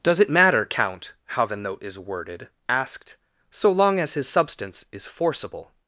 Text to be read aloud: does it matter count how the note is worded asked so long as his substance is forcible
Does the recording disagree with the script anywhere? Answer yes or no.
no